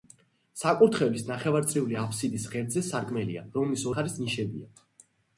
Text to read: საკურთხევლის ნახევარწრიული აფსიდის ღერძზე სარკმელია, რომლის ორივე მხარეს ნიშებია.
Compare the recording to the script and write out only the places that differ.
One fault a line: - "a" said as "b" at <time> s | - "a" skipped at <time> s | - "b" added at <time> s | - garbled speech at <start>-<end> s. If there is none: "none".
- "ორივე" skipped at 3.9 s